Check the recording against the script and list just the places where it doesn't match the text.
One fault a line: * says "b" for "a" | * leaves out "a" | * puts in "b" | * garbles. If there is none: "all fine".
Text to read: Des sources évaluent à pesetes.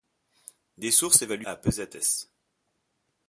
all fine